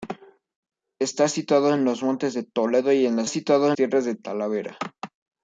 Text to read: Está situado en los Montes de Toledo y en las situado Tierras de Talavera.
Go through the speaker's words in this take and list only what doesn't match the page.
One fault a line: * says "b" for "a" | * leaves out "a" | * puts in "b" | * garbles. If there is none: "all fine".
all fine